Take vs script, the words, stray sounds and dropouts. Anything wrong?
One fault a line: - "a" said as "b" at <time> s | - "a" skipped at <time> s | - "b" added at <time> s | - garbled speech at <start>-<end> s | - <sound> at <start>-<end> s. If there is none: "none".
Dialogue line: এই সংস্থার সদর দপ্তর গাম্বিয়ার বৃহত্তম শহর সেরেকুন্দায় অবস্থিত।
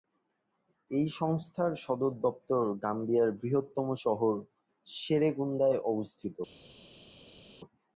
none